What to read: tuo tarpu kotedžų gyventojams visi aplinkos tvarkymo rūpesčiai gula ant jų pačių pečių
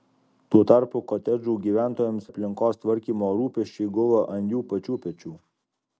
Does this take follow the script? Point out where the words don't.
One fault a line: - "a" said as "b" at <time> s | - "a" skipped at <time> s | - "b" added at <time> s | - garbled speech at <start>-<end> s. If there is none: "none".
- "visi" skipped at 2.3 s